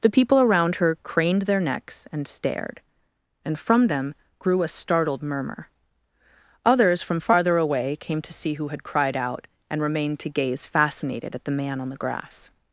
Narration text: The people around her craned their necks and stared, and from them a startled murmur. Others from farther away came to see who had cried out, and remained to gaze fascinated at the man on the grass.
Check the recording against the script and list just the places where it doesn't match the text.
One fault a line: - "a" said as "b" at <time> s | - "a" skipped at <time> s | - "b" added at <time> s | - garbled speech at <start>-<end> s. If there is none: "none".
- "grew" added at 4.4 s